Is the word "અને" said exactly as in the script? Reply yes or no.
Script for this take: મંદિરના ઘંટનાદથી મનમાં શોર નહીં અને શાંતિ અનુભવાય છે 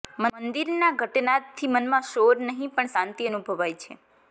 no